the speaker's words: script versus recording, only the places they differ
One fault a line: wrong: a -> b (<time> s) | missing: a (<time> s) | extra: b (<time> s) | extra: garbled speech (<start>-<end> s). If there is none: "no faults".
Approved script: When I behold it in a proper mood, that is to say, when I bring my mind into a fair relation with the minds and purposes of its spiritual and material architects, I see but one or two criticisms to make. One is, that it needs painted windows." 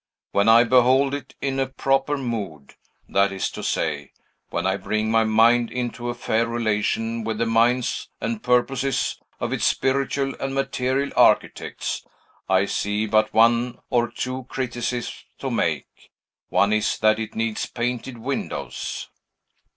no faults